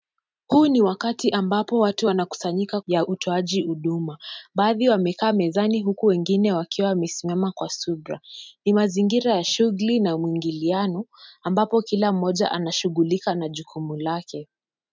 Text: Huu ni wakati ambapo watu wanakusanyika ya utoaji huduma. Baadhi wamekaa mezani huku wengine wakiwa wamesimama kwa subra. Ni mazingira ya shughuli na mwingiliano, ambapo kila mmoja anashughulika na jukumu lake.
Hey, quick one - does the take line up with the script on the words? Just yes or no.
yes